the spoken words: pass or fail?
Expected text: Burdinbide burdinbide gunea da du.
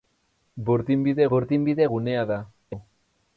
pass